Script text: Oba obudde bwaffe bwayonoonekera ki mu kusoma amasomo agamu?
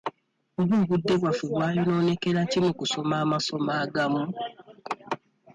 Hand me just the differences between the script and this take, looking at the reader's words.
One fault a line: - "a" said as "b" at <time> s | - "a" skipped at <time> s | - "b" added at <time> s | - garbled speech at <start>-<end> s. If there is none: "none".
none